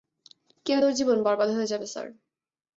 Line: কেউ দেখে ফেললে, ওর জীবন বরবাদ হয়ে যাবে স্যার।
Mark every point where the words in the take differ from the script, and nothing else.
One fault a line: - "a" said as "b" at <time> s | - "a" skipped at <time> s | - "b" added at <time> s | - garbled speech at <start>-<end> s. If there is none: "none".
- "দেখে ফেললে" skipped at 0.8 s